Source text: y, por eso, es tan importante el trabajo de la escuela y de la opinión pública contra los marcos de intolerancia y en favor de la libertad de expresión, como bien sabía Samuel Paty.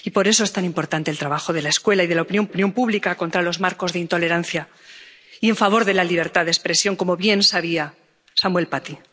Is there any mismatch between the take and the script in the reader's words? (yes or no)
yes